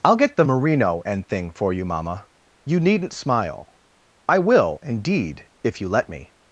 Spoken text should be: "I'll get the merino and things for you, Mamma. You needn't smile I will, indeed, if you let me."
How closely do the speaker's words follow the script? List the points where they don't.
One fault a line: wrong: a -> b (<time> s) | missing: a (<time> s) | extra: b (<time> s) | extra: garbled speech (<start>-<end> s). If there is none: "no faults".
wrong: things -> thing (1.3 s)